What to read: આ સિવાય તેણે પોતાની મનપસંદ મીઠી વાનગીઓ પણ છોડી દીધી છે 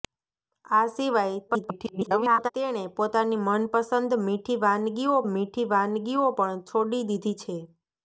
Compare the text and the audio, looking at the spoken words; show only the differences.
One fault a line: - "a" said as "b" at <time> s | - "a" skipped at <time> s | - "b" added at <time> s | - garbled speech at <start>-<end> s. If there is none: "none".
- garbled speech at 1.5-2.5 s
- "મીઠી વાનગીઓ" added at 5.3 s